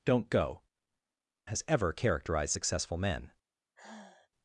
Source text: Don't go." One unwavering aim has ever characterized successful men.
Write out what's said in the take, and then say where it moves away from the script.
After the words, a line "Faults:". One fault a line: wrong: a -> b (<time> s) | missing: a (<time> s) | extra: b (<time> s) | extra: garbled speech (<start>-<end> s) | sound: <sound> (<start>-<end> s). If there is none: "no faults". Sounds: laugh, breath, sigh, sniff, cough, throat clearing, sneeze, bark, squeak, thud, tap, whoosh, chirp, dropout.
Don't go." Has ever characterized successful men.
Faults:
missing: One unwavering aim (0.6 s)
sound: sigh (3.8-4.3 s)